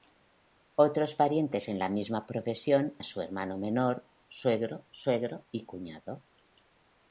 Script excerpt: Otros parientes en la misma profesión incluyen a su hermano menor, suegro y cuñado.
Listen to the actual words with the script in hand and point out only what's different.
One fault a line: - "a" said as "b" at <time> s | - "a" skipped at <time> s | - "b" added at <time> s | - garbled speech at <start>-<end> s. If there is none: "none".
- "incluyen" skipped at 3.0 s
- "suegro" added at 4.9 s